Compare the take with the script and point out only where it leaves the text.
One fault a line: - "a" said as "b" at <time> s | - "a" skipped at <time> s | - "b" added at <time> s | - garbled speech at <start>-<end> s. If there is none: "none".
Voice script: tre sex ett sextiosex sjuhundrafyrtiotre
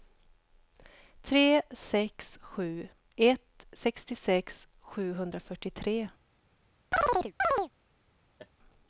- "sju" added at 2.4 s